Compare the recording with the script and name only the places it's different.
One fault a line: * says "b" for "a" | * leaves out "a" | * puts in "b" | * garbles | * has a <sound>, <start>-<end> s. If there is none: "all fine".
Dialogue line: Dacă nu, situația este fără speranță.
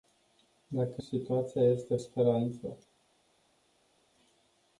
* leaves out "nu"
* leaves out "fără"